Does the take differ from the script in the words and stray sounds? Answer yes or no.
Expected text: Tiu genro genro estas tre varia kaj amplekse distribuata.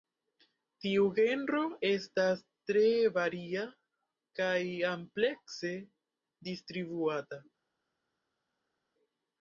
yes